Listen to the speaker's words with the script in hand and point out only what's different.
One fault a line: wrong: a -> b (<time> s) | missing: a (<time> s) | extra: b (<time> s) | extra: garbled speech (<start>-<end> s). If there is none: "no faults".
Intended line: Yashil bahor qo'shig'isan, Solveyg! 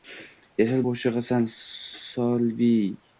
missing: bahor (0.8 s)